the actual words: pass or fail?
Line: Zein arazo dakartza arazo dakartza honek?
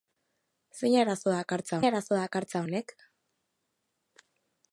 pass